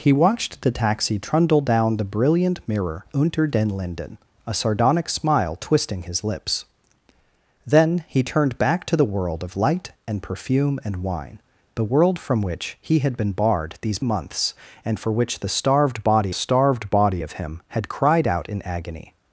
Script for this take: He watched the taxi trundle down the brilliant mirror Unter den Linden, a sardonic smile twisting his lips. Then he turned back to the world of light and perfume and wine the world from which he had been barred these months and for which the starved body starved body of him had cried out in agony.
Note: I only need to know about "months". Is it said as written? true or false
true